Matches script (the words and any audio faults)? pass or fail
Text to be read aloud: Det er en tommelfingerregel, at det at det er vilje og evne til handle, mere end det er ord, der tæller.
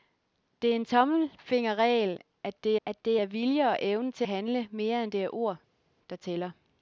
pass